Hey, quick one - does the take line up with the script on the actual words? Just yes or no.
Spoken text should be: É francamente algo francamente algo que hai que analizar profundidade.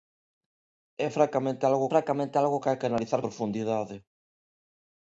yes